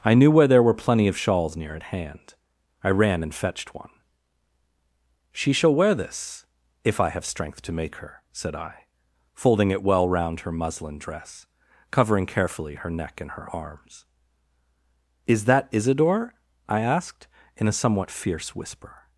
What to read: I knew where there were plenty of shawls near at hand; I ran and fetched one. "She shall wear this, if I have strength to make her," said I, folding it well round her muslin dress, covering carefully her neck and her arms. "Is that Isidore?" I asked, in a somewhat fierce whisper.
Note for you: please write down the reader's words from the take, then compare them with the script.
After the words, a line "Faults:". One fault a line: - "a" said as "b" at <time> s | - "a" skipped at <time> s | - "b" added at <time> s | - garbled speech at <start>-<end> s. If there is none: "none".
I knew where there were plenty of shawls near at hand; I ran and fetched one. "She shall wear this, if I have strength to make her," said I, folding it well round her muslin dress, covering carefully her neck and her arms. "Is that Isidore?" I asked, in a somewhat fierce whisper.
Faults:
none